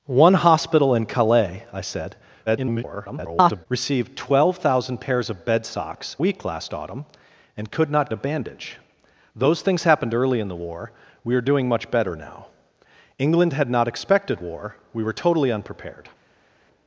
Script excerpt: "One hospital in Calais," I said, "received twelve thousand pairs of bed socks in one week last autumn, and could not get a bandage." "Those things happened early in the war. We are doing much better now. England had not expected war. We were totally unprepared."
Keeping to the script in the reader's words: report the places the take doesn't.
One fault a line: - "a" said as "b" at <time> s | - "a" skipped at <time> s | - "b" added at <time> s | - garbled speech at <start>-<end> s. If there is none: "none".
- garbled speech at 2.5-3.7 s
- "in one" skipped at 6.2 s
- "get" skipped at 8.1 s